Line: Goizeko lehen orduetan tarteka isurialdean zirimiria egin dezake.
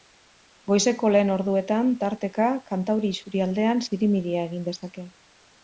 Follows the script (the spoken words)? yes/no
no